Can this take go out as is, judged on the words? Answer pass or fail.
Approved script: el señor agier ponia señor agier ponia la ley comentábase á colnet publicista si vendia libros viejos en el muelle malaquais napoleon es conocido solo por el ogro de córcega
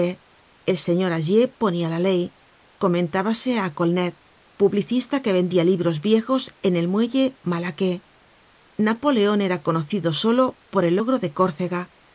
fail